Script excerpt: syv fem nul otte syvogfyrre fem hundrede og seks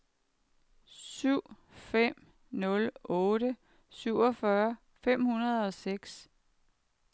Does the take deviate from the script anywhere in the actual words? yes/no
no